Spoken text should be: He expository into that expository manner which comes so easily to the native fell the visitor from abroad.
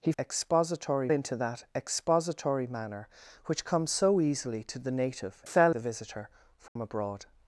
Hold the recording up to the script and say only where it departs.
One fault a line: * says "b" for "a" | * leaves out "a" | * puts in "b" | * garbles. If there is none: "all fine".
all fine